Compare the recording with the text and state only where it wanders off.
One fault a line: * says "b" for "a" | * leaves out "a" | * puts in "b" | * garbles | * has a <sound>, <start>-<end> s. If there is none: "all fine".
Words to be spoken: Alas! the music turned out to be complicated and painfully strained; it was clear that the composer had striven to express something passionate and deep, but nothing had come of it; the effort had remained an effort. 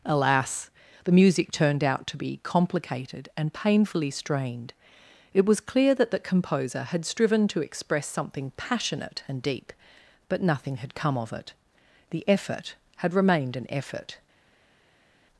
all fine